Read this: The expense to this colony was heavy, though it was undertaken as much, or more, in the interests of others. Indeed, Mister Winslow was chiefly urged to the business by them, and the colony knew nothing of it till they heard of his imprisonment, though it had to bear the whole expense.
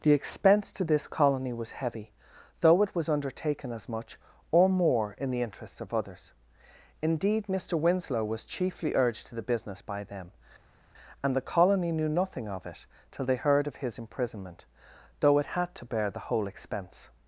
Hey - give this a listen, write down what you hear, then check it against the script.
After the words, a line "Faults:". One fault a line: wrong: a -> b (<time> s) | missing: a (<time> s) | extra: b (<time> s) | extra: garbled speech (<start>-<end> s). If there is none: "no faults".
The expense to this colony was heavy, though it was undertaken as much, or more, in the interests of others. Indeed, Mister Winslow was chiefly urged to the business by them, and the colony knew nothing of it till they heard of his imprisonment, though it had to bear the whole expense.
Faults:
no faults